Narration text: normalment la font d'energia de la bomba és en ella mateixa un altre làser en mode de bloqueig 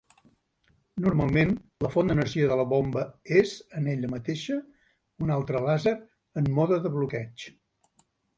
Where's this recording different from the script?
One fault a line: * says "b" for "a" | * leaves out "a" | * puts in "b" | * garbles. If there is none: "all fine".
all fine